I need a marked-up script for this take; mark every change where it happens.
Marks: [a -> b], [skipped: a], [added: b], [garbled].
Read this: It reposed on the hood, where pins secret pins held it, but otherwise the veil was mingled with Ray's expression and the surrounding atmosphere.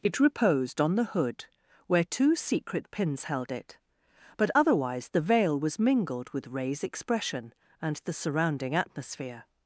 It reposed on the hood, where [pins -> two] secret pins held it, but otherwise the veil was mingled with Ray's expression and the surrounding atmosphere.